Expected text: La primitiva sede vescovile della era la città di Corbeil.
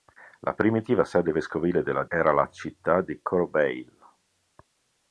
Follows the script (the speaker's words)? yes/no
yes